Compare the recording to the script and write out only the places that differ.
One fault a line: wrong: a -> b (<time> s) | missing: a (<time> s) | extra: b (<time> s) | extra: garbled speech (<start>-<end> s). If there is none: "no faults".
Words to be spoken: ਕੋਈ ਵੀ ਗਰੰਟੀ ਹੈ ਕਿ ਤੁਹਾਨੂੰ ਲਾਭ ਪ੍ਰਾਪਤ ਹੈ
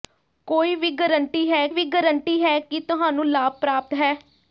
extra: ਵੀ ਗਰੰਟੀ ਹੈ (1.7 s)